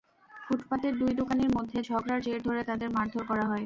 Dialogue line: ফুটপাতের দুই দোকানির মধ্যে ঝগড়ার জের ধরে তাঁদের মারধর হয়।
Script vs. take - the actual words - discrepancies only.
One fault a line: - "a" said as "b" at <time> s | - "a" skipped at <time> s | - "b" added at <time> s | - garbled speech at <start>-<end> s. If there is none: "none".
- "করা" added at 3.3 s